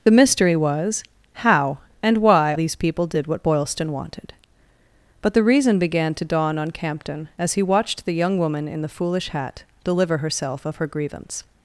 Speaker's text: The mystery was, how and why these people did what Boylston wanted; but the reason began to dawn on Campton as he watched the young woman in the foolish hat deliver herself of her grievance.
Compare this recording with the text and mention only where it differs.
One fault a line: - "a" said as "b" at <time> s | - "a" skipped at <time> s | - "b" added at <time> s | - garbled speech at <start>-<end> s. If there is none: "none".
none